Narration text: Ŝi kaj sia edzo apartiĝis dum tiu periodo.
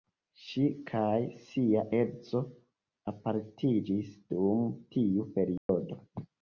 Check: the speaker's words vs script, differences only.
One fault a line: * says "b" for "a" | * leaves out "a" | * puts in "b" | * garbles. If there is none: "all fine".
all fine